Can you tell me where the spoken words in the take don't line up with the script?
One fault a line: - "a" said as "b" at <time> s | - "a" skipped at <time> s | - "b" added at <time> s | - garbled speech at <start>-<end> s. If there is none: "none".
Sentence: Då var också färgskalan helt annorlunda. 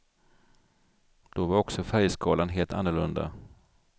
none